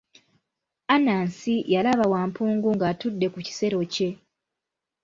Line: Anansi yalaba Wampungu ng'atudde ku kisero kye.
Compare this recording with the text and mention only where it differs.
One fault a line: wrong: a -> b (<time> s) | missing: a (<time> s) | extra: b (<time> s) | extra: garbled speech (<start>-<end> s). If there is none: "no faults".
no faults